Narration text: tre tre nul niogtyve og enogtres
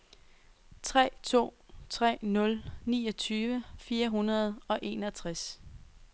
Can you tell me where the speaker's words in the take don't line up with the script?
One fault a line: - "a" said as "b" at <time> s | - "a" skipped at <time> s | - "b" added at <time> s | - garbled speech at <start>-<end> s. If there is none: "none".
- "to" added at 1.2 s
- "fire hundrede" added at 3.8 s